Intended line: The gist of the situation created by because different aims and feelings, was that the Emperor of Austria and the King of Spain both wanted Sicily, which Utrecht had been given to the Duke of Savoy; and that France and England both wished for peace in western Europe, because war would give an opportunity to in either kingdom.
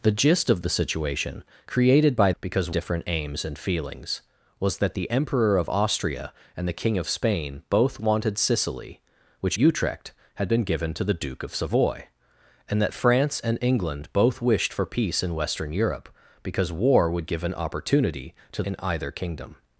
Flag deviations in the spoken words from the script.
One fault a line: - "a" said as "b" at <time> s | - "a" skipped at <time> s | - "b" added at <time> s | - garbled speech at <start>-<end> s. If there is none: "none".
none